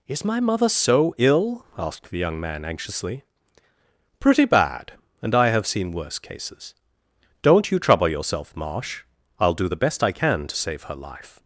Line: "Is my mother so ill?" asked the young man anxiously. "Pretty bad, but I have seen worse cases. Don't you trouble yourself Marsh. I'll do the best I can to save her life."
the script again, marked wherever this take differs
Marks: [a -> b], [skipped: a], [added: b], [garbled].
"Is my mother so ill?" asked the young man anxiously. "Pretty bad, [but -> and] I have seen worse cases. Don't you trouble yourself Marsh. I'll do the best I can to save her life."